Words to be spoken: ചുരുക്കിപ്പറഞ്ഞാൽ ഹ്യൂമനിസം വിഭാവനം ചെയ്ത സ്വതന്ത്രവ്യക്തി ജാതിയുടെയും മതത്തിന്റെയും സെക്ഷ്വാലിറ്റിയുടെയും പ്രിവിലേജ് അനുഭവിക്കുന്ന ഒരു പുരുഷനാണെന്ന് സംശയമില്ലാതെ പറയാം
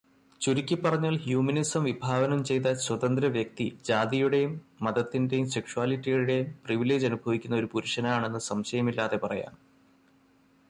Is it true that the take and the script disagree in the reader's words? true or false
false